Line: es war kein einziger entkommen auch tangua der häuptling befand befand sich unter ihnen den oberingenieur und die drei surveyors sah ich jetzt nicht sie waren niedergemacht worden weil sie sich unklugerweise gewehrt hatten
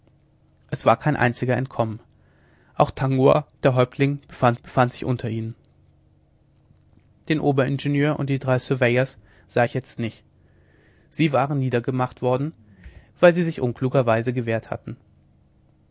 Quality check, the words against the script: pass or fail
pass